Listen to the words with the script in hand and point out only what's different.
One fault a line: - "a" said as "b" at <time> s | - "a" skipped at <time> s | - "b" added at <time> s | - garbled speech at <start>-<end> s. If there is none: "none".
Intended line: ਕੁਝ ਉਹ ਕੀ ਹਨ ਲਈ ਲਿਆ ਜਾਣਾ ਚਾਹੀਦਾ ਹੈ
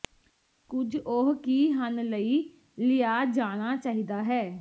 none